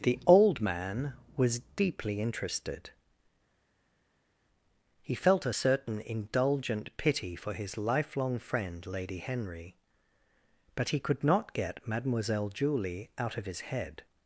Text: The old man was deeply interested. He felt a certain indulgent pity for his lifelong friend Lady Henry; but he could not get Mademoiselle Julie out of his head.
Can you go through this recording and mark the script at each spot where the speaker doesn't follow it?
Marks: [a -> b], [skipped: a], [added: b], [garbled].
The old man was deeply interested. He felt a certain indulgent pity for his lifelong friend Lady Henry; but he could not get Mademoiselle Julie out of his head.